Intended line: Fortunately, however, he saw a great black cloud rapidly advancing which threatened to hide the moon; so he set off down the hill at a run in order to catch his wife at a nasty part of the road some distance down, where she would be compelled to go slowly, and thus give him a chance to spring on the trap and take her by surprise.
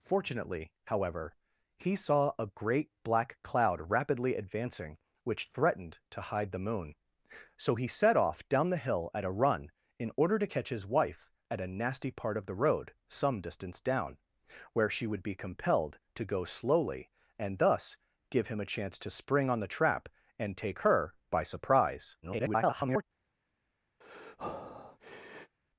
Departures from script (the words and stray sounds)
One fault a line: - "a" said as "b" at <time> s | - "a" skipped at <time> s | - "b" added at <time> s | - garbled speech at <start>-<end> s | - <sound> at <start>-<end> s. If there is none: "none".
- garbled speech at 22.2-23.0 s
- breath at 24.0-25.6 s